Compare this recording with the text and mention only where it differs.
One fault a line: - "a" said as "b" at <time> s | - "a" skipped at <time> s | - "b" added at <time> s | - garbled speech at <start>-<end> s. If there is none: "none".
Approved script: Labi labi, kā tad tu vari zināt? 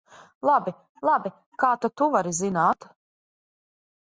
none